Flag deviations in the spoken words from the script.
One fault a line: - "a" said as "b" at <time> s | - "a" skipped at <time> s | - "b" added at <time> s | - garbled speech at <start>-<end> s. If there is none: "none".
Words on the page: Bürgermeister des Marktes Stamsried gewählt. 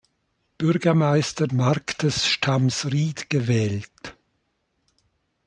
- "des" skipped at 1.5 s